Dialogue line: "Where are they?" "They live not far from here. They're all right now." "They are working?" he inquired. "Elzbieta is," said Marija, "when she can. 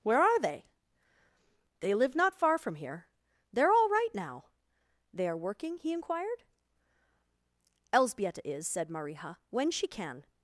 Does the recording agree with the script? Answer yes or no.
yes